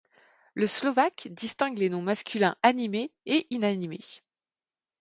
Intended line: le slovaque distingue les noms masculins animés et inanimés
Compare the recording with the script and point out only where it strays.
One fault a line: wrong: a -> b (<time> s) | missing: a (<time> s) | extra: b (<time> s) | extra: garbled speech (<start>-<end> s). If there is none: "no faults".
no faults